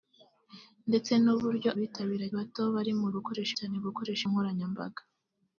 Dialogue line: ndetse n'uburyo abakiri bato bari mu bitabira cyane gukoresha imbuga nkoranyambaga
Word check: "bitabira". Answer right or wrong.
wrong